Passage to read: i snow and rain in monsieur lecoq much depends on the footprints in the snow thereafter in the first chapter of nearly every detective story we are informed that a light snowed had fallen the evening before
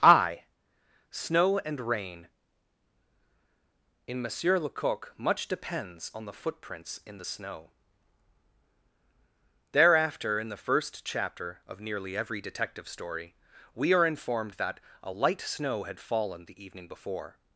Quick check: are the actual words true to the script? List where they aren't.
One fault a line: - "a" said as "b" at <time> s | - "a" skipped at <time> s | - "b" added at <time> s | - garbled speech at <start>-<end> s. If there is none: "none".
- "snowed" said as "snow" at 15.4 s